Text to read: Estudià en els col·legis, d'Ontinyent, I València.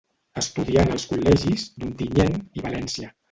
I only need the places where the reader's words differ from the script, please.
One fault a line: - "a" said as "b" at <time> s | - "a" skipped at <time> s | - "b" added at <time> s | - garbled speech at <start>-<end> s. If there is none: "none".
none